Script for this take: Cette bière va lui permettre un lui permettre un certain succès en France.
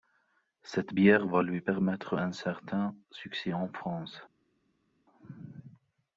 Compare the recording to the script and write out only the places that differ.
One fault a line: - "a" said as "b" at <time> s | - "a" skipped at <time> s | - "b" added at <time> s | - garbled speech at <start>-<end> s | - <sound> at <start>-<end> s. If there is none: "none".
- "lui permettre un" skipped at 2.3 s